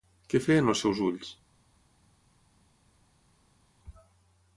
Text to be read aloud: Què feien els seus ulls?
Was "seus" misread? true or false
false